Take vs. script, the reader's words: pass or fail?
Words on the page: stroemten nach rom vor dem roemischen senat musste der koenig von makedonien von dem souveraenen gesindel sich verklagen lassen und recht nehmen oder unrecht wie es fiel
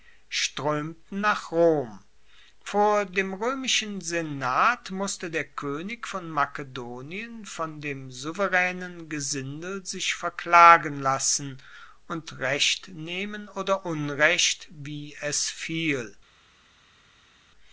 pass